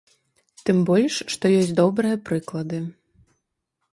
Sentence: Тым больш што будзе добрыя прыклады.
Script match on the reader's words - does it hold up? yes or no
no